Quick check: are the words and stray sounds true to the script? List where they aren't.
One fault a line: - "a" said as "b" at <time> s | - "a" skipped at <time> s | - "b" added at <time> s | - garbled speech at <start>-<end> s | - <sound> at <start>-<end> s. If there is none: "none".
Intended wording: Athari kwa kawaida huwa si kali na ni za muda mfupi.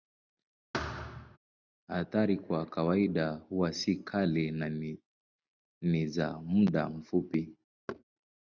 - thud at 0.7-1.4 s
- thud at 7.9-8.0 s